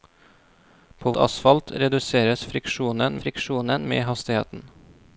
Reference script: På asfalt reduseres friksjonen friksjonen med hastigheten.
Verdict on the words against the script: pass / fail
pass